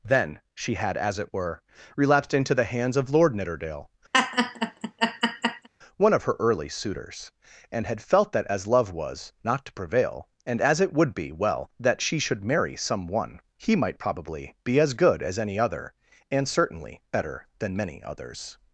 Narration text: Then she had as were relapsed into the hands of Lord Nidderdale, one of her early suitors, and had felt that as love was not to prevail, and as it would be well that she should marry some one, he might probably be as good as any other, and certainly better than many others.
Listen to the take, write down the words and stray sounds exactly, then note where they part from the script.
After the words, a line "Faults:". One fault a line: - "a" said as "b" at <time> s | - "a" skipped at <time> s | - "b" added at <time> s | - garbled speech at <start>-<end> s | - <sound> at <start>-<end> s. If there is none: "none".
Then she had as it were relapsed into the hands of Lord Nidderdale, one of her early suitors, and had felt that as love was not to prevail, and as it would be well that she should marry some one, he might probably be as good as any other, and certainly better than many others.
Faults:
- "it" added at 1.2 s
- laugh at 4.1-5.7 s